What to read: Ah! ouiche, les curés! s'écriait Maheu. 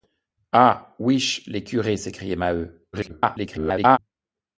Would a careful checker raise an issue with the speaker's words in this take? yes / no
yes